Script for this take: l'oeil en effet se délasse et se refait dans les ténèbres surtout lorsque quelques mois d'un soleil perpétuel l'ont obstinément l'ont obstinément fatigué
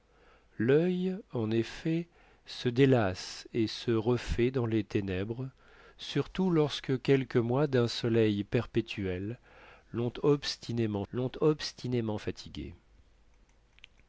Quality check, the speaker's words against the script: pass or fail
pass